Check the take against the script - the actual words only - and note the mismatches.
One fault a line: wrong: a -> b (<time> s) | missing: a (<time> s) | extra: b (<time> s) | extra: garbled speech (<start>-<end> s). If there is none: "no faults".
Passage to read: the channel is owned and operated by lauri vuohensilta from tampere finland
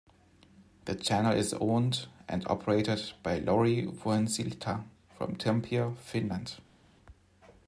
no faults